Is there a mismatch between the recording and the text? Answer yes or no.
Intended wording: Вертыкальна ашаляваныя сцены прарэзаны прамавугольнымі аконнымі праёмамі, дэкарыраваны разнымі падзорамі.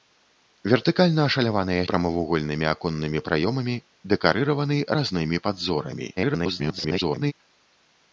yes